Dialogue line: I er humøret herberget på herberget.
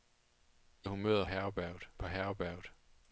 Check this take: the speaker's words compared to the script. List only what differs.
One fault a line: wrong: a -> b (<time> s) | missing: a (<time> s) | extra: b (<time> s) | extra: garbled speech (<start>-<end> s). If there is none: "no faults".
no faults